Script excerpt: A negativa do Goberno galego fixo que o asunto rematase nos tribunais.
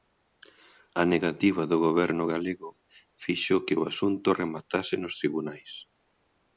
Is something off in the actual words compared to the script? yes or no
no